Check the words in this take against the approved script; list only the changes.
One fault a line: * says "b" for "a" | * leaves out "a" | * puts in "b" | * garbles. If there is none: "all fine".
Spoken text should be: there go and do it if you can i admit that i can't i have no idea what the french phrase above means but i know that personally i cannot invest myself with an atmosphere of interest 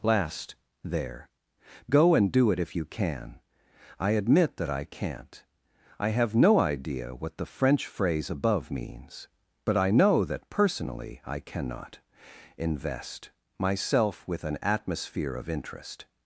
* puts in "last"